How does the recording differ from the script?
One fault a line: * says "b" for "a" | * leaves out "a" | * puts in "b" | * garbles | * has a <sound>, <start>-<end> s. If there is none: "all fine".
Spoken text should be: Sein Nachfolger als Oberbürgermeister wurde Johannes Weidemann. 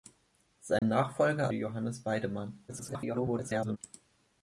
* has a dropout, 0.8-0.8 s
* leaves out "als Oberbürgermeister wurde"
* garbles